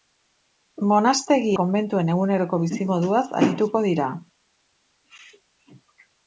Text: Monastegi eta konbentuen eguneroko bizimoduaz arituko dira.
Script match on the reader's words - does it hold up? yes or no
no